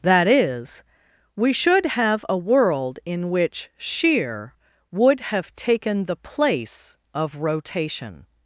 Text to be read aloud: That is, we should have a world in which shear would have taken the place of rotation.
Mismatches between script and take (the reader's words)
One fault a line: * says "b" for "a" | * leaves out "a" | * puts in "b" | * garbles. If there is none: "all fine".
all fine